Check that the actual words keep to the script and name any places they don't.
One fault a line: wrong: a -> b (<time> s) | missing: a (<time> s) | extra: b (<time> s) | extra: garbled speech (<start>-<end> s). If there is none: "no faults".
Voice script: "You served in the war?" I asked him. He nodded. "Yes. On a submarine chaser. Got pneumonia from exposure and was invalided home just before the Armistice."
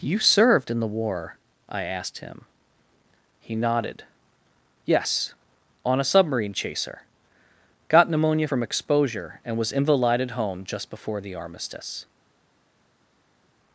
no faults